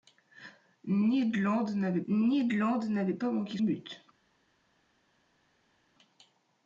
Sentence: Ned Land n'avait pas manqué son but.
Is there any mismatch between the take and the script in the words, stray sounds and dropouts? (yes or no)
yes